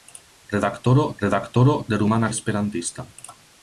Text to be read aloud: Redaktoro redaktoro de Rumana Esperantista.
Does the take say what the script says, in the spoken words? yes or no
yes